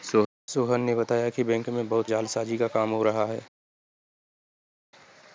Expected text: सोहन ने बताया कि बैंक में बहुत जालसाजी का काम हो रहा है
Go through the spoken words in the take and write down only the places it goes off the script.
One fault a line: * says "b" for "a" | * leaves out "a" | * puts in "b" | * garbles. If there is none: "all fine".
all fine